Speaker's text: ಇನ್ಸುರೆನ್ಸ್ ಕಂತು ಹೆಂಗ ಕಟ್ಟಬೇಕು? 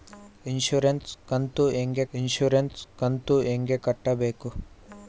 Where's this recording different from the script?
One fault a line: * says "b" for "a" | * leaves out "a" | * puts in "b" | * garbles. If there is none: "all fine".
* puts in "ಇನ್ಸುರೆನ್ಸ್ ಕಂತು ಹೆಂಗ"